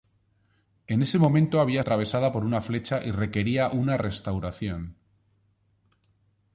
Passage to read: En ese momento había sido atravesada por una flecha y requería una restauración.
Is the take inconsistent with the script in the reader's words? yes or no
yes